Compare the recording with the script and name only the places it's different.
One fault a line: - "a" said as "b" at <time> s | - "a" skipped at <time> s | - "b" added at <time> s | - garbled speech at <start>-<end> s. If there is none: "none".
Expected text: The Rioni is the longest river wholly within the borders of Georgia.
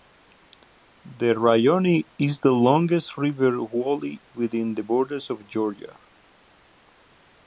none